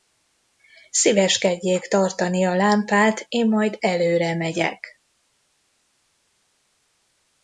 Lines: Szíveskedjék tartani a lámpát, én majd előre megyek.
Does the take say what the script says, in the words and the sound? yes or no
yes